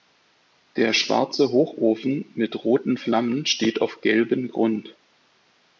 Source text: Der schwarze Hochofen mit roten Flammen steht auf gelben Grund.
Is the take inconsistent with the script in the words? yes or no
no